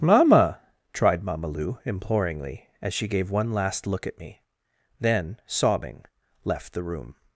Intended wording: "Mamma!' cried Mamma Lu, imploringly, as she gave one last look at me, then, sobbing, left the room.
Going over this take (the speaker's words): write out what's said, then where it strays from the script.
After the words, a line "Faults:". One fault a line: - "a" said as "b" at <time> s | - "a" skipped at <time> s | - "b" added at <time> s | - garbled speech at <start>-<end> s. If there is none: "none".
"Mamma!' tried Mamma Lu, imploringly, as she gave one last look at me, then, sobbing, left the room.
Faults:
- "cried" said as "tried" at 0.9 s